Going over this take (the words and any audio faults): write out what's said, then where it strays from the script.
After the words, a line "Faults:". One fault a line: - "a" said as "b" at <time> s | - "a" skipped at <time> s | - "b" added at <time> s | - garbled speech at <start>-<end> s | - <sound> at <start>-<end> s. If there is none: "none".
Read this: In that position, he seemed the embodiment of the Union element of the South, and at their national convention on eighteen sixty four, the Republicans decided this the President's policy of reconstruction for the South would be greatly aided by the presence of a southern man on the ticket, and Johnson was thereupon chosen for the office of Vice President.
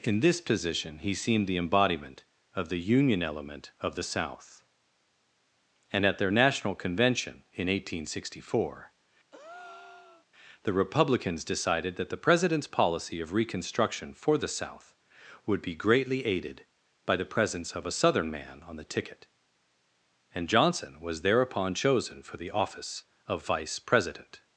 In this position, he seemed the embodiment of the Union element of the South, and at their national convention in eighteen sixty four, the Republicans decided that the President's policy of reconstruction for the South would be greatly aided by the presence of a southern man on the ticket, and Johnson was thereupon chosen for the office of Vice President.
Faults:
- "that" said as "this" at 0.2 s
- "on" said as "in" at 7.5 s
- breath at 9.3-10.3 s
- "this" said as "that" at 12.0 s